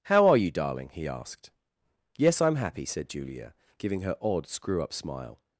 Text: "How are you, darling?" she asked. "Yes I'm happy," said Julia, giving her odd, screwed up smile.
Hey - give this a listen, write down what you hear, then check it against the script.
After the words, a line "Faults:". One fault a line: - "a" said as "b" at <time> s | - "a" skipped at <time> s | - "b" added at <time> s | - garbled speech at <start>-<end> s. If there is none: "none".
"How are you, darling?" he asked. "Yes I'm happy," said Julia, giving her odd, screw up smile.
Faults:
- "she" said as "he" at 0.9 s
- "screwed" said as "screw" at 4.5 s